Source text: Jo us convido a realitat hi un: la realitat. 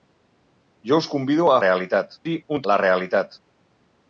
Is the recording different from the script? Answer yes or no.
no